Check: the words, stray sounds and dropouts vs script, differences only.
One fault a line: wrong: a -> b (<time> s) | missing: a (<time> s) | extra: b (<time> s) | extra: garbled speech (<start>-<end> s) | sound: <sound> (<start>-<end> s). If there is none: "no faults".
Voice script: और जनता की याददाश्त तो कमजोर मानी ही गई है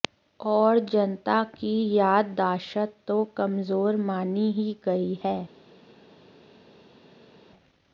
no faults